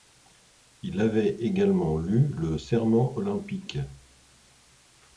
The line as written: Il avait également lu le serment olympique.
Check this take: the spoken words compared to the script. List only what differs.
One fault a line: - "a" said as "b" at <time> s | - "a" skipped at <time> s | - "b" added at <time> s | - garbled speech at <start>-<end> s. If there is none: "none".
none